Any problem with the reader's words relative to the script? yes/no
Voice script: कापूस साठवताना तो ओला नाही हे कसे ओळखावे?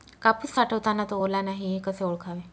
no